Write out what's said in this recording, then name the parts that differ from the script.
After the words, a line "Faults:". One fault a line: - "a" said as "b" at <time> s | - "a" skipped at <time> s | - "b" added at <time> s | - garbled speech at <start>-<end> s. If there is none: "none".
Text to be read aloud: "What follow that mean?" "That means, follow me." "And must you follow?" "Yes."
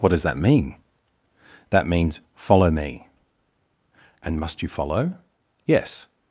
"What does that mean?" "That means, follow me." "And must you follow?" "Yes."
Faults:
- "follow" said as "does" at 0.1 s